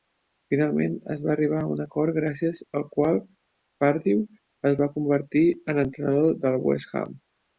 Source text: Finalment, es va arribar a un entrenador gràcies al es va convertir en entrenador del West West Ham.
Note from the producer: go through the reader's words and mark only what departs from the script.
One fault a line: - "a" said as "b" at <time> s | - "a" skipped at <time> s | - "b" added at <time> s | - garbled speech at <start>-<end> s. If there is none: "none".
- "entrenador" said as "acord" at 1.8 s
- "qual Pardew" added at 3.0 s
- "West" skipped at 7.0 s